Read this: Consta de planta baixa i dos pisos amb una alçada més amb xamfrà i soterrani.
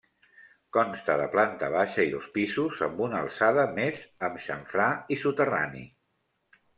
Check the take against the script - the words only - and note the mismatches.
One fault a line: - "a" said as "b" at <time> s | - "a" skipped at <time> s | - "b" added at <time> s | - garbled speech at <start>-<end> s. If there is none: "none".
none